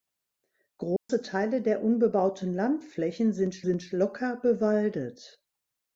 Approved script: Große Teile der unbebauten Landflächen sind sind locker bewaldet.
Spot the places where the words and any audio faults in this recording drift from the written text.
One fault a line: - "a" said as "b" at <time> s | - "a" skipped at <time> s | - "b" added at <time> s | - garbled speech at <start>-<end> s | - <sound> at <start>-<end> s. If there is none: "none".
- dropout at 1.0-1.1 s